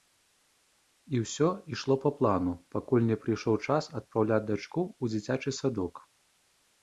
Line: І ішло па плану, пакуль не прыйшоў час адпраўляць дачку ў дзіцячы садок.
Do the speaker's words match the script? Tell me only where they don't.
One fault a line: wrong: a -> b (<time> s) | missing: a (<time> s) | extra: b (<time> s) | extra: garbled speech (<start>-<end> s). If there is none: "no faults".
extra: ўсё (1.2 s)